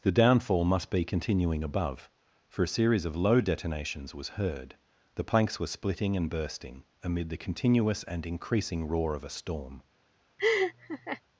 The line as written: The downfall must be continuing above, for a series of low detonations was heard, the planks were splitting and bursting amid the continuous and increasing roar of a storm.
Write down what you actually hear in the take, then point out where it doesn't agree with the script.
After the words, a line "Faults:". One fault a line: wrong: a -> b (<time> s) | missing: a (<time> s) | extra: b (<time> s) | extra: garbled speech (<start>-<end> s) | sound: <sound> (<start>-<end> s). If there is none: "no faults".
The downfall must be continuing above, for a series of low detonations was heard, the planks were splitting and bursting amid the continuous and increasing roar of a storm.
Faults:
sound: laugh (10.4-11.2 s)